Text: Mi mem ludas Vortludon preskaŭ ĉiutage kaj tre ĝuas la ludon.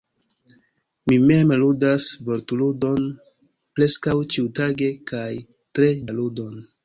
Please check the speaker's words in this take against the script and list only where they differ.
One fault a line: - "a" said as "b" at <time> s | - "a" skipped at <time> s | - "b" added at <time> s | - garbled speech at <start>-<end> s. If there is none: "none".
- "ĝuas" skipped at 5.9 s